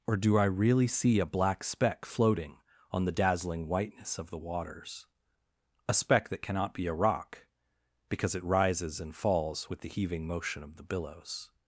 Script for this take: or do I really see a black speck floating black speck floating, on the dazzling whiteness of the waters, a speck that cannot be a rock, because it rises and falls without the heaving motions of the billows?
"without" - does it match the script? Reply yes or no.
no